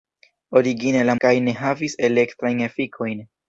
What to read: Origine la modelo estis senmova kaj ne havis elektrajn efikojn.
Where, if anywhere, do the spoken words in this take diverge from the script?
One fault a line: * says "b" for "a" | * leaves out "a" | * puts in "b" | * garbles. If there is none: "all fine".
* leaves out "modelo estis senmova"